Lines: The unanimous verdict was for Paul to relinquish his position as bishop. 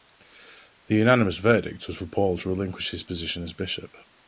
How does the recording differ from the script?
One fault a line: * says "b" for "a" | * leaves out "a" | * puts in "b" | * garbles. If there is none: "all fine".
all fine